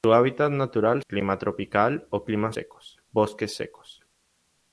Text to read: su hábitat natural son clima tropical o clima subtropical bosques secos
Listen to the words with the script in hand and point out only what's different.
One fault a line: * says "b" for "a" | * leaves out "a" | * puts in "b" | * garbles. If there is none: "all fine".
* leaves out "son"
* says "secos" for "subtropical"